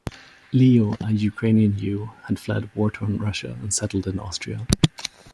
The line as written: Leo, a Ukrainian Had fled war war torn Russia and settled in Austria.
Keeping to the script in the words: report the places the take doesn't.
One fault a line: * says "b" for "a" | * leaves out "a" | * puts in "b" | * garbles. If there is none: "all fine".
* puts in "Jew"
* leaves out "war"